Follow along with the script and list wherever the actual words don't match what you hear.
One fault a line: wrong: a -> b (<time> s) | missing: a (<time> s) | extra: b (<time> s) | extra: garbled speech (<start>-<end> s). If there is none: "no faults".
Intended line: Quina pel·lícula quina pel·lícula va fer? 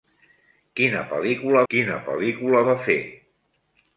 no faults